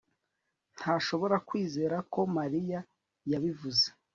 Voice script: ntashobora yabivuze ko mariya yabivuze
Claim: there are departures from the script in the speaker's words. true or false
true